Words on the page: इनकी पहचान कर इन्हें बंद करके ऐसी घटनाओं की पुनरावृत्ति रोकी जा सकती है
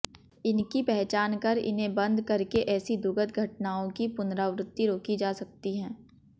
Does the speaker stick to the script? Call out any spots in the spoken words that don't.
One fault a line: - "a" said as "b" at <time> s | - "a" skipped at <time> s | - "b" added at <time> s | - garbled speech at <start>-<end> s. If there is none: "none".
- "दुखद" added at 3.0 s